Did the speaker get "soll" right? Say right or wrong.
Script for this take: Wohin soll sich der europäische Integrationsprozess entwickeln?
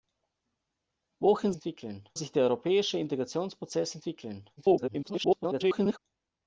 wrong